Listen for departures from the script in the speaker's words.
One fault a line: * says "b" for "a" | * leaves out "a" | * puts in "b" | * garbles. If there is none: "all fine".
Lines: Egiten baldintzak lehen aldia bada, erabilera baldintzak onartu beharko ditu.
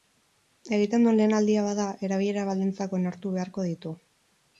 * says "duen" for "baldintzak"